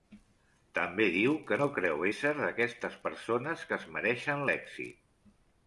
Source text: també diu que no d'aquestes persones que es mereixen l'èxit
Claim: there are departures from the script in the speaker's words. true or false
true